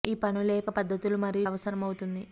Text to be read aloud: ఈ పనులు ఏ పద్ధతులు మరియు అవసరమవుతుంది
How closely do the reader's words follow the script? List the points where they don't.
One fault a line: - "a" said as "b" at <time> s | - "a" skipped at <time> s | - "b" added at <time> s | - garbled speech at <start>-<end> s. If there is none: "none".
none